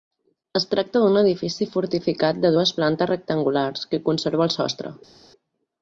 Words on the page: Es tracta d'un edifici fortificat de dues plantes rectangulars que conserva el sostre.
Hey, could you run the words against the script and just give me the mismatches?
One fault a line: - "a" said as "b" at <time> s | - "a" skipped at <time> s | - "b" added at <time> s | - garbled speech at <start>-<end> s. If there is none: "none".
none